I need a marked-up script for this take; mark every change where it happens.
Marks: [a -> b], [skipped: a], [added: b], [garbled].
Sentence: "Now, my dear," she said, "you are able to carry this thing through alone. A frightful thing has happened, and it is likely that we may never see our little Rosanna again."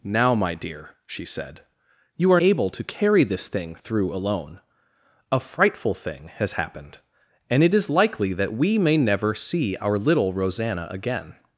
"Now, my dear," she said, "you are able to carry this thing through alone. A frightful thing has happened, and it is likely that we may never see our little Rosanna again."